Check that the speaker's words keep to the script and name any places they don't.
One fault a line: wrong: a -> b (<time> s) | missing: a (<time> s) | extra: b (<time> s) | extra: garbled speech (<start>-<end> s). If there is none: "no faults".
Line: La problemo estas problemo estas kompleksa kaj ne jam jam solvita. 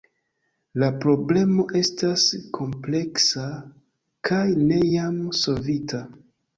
missing: problemo estas (2.2 s)
missing: jam (5.2 s)